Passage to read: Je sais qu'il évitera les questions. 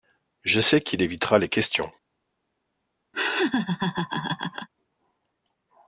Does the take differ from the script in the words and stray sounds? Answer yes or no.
yes